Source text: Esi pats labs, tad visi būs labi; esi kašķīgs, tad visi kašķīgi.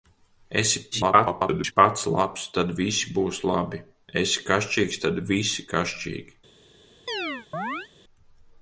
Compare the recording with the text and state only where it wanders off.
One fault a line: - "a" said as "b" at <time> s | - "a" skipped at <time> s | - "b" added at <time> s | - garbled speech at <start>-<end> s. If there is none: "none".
- garbled speech at 0.9-1.7 s